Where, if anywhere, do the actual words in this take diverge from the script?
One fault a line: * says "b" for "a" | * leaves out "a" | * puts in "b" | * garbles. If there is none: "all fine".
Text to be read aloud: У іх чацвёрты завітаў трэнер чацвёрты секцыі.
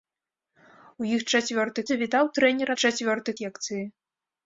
all fine